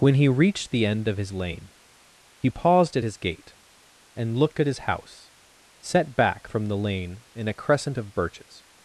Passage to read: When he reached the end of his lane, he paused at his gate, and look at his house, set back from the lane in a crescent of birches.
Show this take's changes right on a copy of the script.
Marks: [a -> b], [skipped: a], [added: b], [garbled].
When he reached the end of his lane, he paused at his gate, and [look -> looked] at his house, set back from the lane in a crescent of birches.